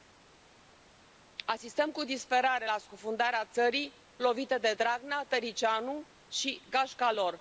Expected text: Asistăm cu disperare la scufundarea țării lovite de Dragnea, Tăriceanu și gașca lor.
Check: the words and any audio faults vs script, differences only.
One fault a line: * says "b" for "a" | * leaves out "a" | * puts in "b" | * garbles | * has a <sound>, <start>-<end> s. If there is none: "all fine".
all fine